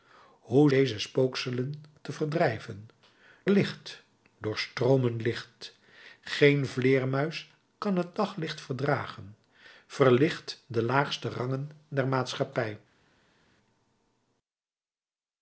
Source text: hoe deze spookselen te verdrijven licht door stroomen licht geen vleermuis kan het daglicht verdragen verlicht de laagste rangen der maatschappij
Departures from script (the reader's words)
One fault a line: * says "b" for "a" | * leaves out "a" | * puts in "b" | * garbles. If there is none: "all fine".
all fine